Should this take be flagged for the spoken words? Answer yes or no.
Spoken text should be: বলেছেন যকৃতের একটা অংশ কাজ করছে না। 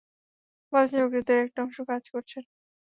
no